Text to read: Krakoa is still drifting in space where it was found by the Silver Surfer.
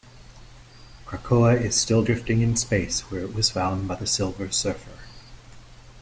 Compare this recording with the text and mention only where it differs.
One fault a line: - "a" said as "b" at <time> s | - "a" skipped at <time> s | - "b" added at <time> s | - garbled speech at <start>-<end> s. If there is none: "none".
none